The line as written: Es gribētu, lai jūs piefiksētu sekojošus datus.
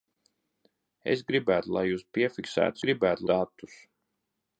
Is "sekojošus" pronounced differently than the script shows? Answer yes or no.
yes